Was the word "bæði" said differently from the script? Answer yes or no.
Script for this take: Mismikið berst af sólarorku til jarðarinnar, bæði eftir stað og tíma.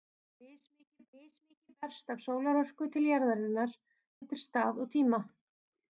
yes